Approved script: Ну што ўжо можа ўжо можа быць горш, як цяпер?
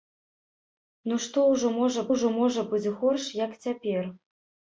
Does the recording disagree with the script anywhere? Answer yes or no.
no